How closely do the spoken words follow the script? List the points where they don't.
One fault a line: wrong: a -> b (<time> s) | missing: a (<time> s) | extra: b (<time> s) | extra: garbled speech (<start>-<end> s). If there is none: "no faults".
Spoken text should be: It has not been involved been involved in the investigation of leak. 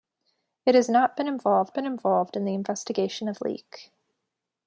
no faults